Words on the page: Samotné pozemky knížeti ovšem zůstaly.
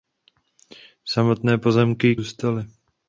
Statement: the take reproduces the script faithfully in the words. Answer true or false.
false